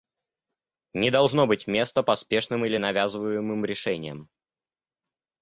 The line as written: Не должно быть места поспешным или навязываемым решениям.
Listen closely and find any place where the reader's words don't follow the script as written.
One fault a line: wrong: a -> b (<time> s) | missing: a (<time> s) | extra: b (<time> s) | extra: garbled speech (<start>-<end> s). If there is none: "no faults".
no faults